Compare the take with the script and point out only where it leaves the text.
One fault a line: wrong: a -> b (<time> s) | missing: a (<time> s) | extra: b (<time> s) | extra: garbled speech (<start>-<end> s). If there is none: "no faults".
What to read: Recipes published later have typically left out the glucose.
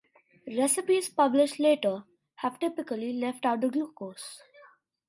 no faults